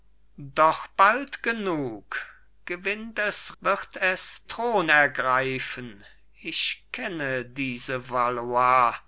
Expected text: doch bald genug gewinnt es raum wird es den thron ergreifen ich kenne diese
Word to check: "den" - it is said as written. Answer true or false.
false